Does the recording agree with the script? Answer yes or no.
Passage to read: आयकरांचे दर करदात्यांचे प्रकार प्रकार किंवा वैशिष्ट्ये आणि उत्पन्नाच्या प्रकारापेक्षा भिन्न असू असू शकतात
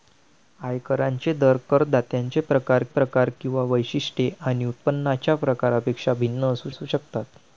yes